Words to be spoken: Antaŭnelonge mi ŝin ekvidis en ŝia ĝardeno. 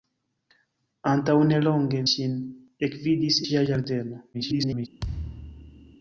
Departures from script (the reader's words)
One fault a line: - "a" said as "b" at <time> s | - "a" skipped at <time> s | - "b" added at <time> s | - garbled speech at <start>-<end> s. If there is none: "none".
- "mi" skipped at 2.0 s
- "en" skipped at 3.4 s
- garbled speech at 4.3-4.9 s